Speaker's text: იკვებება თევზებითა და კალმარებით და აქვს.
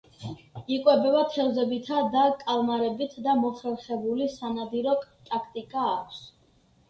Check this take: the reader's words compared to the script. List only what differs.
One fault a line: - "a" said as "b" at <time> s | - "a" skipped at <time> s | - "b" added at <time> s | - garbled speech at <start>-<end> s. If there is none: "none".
- "მოხერხებული სანადირო ტაქტიკა" added at 3.4 s